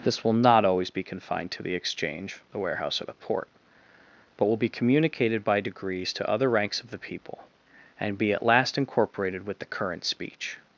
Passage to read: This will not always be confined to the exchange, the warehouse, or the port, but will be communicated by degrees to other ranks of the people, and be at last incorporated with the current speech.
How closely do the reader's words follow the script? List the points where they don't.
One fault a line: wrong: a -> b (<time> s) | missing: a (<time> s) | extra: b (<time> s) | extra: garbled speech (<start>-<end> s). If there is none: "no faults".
no faults